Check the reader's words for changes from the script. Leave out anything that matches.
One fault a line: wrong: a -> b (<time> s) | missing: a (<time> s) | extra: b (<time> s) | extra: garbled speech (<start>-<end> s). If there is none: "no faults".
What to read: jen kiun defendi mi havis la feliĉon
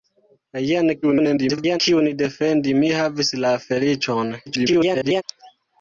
extra: garbled speech (1.0-1.8 s)
extra: garbled speech (4.5-5.2 s)